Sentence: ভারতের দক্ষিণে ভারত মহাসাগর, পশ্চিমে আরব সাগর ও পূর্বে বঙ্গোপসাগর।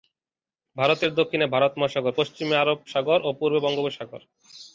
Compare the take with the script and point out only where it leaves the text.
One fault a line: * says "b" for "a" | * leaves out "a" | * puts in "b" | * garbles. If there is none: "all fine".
all fine